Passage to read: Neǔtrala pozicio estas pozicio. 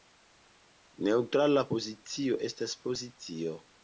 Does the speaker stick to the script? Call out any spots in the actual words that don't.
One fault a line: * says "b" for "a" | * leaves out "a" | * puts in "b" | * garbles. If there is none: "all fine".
all fine